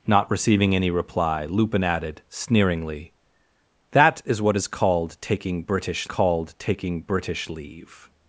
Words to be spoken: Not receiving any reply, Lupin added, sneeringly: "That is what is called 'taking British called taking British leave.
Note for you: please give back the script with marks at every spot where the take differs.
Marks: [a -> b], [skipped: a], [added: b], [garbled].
Not receiving any reply, Lupin added, sneeringly: "That is what is called 'taking British called taking British leave.